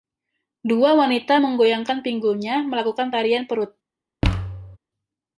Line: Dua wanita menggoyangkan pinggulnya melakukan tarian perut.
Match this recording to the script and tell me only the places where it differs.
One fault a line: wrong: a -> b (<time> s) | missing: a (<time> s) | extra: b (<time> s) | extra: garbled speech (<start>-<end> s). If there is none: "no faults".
no faults